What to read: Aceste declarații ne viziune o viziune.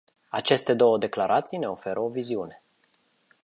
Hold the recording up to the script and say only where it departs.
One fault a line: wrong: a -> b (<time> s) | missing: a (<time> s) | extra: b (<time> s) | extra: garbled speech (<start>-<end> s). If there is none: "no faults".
extra: două (0.7 s)
wrong: viziune -> oferă (1.7 s)